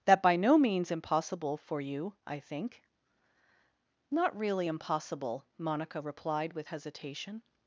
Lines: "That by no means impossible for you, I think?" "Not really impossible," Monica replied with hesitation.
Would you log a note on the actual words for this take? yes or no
no